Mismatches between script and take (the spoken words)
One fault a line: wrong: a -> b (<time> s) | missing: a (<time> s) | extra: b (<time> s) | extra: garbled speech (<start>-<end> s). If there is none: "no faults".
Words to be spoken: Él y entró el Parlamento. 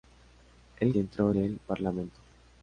no faults